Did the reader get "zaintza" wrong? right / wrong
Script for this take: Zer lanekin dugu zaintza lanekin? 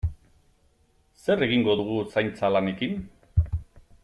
right